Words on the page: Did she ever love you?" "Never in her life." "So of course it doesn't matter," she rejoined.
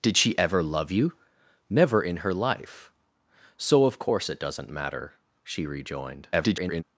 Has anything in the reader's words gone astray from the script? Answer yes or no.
yes